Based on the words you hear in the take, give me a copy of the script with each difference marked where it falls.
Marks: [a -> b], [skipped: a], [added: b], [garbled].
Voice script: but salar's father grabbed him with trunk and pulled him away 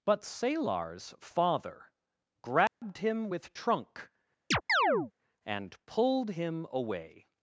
but salar's father grabbed him with trunk and pulled him away